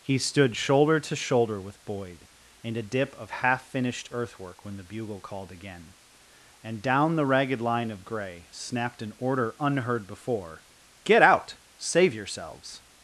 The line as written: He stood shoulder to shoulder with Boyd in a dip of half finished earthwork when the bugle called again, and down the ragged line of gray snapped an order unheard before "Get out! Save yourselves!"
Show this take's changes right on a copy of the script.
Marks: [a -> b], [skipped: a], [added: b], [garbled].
He stood shoulder to shoulder with Boyd in a dip of half finished earthwork when the bugle called again, and down the ragged line of gray snapped an order unheard before "Get out! Save yourselves!"